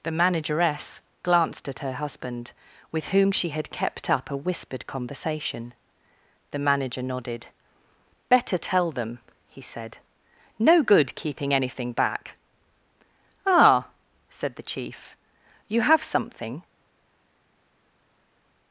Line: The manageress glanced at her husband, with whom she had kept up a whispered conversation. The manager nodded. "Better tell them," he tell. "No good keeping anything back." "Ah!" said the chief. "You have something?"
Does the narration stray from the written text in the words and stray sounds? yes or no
yes